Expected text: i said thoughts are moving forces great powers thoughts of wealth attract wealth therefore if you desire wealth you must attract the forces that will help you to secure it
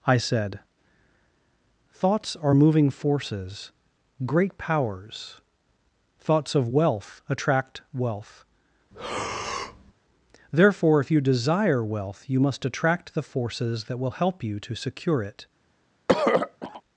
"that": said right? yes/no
yes